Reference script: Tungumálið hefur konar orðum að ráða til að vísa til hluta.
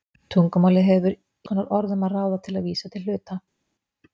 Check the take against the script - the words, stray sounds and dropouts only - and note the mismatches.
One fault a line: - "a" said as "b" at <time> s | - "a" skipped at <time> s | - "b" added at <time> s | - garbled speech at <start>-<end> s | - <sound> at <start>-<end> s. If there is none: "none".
none